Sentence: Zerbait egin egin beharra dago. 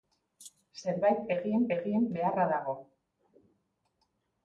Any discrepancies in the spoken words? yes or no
no